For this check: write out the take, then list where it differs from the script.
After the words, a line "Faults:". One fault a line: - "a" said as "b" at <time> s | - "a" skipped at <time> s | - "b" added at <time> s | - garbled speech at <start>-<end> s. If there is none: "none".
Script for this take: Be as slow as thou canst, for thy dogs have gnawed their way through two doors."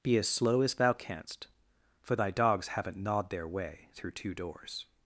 Be as slow as thou canst, for thy dogs haven't gnawed their way through two doors."
Faults:
- "have" said as "haven't" at 2.7 s